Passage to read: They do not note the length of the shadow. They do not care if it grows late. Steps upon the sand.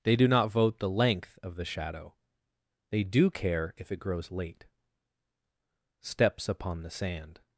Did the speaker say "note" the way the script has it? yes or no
no